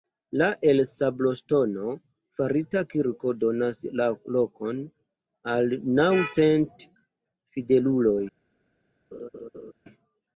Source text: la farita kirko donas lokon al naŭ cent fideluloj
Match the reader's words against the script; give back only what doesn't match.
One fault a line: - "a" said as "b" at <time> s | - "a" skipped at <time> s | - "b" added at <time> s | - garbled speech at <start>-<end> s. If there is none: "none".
- "el sabloŝtono" added at 0.7 s